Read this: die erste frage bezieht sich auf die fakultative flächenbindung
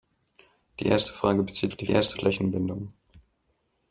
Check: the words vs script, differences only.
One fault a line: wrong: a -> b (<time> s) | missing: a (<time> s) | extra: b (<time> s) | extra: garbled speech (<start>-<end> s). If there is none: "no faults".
missing: sich (1.7 s)
wrong: fakultative -> erste (1.9 s)